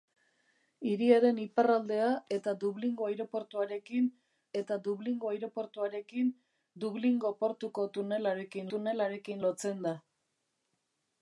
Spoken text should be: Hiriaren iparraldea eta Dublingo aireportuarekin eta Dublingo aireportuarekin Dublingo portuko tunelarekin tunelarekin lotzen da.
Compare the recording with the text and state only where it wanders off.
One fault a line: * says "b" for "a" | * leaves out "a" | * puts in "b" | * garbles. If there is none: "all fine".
all fine